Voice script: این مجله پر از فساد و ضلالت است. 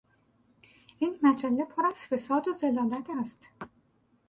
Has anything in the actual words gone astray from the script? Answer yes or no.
no